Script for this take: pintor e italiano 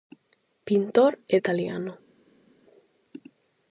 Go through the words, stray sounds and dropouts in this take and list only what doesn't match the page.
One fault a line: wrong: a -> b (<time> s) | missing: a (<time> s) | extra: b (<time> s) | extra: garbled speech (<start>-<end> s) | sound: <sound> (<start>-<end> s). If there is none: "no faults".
no faults